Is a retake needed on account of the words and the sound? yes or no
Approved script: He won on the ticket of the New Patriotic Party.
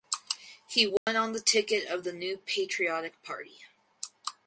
yes